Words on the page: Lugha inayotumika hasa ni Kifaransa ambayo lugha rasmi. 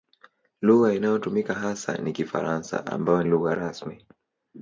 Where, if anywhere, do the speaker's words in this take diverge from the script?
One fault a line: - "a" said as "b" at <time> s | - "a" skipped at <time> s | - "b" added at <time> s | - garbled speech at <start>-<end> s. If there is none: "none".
none